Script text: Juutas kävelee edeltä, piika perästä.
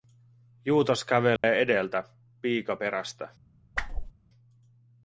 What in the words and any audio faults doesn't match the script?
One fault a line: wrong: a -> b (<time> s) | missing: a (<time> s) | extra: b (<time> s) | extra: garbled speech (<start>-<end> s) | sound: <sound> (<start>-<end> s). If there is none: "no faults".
sound: dropout (1.4-1.4 s)
sound: whoosh (3.7-4.1 s)